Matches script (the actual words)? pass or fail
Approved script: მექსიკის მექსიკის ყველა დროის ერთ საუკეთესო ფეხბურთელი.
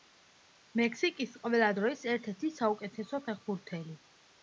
fail